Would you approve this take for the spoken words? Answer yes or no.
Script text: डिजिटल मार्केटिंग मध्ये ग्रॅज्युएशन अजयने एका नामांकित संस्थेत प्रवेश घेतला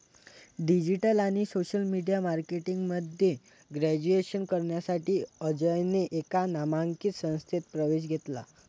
no